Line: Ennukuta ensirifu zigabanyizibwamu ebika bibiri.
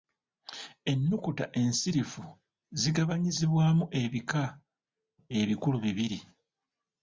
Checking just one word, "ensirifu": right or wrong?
right